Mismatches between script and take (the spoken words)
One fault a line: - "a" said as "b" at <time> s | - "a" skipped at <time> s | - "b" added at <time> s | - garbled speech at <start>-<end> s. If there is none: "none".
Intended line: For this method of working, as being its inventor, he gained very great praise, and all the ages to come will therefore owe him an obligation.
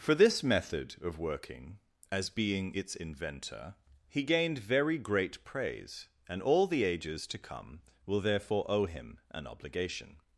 none